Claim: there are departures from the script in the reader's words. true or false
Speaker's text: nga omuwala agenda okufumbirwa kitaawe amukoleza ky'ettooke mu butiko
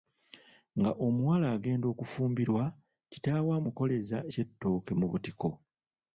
false